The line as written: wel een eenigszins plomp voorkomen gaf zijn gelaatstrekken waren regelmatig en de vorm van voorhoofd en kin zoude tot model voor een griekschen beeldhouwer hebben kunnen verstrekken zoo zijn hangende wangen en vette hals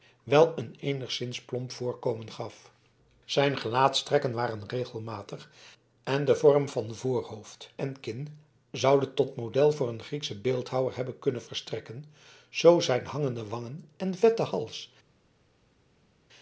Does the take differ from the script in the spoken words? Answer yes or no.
no